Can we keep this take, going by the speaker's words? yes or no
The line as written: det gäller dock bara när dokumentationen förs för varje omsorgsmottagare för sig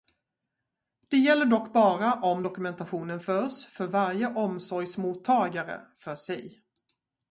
no